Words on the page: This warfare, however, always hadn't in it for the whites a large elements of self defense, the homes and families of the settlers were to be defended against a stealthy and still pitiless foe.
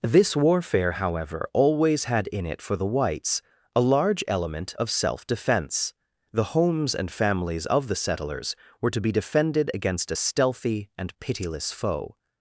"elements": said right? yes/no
no